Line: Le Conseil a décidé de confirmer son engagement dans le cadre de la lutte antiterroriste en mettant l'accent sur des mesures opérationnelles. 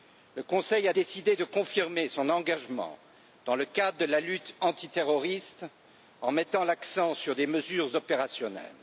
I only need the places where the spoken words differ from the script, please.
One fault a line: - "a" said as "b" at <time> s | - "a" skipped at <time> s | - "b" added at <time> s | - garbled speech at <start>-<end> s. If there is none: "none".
none